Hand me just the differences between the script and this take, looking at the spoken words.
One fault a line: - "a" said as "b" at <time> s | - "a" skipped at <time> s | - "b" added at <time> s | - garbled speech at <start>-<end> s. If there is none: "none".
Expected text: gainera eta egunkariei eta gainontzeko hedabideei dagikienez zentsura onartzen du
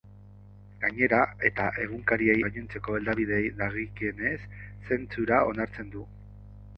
- "eta" skipped at 2.4 s